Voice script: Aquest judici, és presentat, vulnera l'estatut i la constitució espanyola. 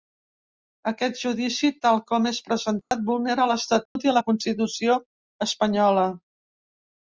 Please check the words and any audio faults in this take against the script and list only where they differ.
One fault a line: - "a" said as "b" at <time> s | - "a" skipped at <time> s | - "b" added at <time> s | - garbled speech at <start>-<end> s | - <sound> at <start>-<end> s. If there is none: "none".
- "tal com" added at 1.9 s
- dropout at 2.8-2.9 s
- dropout at 3.9-4.0 s